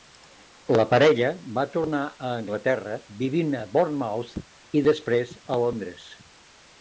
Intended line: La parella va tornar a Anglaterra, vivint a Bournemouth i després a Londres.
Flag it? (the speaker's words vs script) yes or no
no